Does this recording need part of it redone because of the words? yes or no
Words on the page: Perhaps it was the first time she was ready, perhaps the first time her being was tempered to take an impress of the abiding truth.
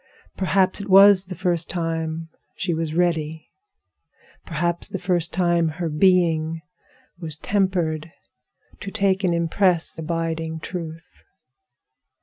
yes